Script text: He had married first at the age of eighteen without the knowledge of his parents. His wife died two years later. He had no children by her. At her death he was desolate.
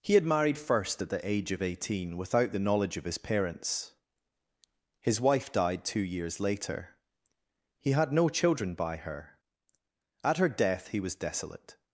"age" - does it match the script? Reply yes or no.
yes